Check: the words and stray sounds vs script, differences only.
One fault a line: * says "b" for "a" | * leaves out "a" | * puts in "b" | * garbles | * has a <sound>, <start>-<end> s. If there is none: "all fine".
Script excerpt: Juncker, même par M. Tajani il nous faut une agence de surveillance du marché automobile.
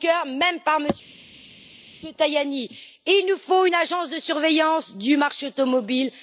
all fine